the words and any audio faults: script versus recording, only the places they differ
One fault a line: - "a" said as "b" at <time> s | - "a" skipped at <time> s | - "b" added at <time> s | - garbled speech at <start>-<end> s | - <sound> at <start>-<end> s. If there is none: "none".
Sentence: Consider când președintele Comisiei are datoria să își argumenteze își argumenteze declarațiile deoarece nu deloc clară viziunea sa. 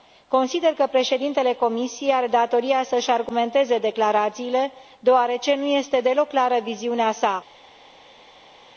- "când" said as "că" at 0.7 s
- "își argumenteze" skipped at 3.8 s
- "este" added at 5.7 s